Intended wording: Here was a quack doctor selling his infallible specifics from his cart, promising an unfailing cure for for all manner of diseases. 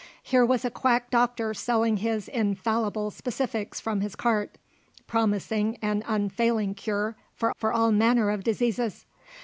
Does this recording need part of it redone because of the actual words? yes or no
no